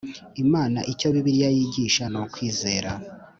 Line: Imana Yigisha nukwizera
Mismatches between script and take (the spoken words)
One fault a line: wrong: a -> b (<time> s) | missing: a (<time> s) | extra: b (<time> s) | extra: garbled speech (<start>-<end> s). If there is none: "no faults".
extra: Icyo Bibiliya (0.9 s)